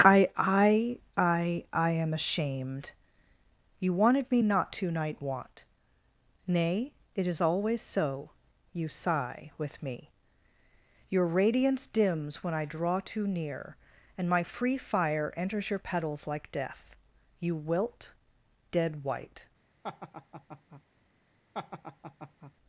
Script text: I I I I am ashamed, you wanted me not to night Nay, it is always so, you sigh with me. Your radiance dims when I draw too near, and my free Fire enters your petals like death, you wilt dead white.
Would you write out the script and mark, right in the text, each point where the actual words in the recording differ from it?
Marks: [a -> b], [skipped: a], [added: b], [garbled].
I I I I am ashamed, you wanted me not to night [added: want] Nay, it is always so, you sigh with me. Your radiance dims when I draw too near, and my free Fire enters your petals like death, you wilt dead white.